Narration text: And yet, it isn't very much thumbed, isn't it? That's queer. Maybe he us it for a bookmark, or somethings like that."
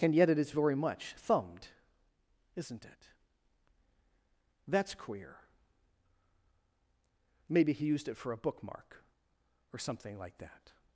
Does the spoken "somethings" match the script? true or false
false